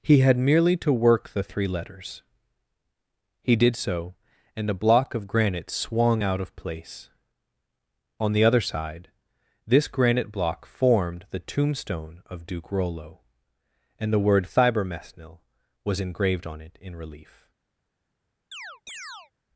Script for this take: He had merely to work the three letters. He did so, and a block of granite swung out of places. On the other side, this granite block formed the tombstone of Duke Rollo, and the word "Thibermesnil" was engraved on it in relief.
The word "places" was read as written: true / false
false